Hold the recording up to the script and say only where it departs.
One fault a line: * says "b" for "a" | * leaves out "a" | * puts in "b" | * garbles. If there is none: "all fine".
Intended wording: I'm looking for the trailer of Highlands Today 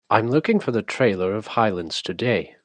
all fine